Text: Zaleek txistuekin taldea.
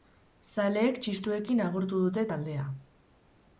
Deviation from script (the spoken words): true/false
true